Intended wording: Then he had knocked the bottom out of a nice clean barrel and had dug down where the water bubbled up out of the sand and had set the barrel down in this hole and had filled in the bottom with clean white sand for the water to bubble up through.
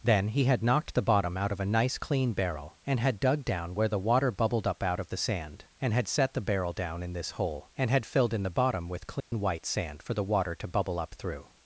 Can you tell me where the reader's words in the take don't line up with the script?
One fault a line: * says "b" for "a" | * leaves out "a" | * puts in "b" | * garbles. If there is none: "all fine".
all fine